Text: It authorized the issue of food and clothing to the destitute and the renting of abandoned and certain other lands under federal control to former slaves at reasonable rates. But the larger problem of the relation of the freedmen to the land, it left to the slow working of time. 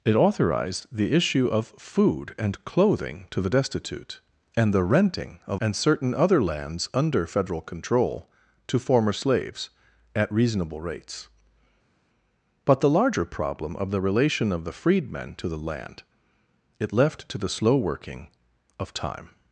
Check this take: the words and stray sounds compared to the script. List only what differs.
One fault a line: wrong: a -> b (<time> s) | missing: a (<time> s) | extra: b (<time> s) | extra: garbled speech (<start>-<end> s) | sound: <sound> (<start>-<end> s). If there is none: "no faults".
missing: abandoned (5.6 s)